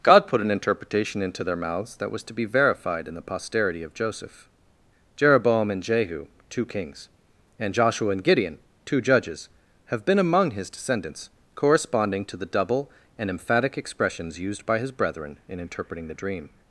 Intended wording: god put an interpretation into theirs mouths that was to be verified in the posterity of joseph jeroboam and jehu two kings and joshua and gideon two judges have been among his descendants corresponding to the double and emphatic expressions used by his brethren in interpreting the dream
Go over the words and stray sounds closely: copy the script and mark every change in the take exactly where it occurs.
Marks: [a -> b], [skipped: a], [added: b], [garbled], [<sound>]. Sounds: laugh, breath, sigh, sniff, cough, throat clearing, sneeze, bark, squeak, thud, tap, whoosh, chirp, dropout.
god put an interpretation into [theirs -> their] mouths that was to be verified in the posterity of joseph jeroboam and jehu two kings and joshua and gideon two judges have been among his descendants corresponding to the double and emphatic expressions used by his brethren in interpreting the dream